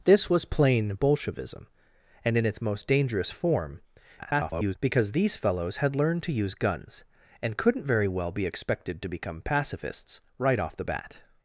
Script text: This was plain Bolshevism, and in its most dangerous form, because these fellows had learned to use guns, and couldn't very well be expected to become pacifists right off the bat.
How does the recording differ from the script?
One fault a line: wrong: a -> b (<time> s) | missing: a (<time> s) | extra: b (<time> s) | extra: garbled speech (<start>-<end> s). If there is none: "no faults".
extra: garbled speech (4.2-4.8 s)